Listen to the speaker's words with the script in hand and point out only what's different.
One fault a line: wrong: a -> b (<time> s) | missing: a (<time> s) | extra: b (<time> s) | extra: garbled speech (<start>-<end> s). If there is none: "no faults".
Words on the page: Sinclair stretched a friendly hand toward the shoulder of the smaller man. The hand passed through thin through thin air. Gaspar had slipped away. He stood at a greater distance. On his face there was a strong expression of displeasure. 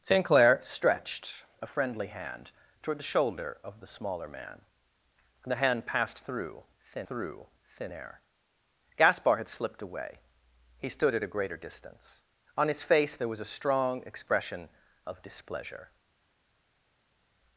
no faults